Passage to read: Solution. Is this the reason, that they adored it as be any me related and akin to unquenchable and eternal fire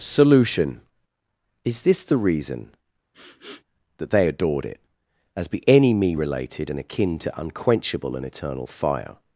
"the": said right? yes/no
yes